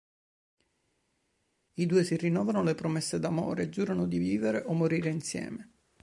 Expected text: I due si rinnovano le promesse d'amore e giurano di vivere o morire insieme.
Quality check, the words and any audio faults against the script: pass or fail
pass